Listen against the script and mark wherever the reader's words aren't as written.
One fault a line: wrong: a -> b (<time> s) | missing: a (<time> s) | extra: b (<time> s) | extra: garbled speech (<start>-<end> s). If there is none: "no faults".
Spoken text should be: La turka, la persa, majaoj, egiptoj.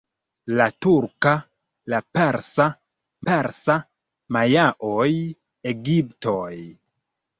extra: persa (3.3 s)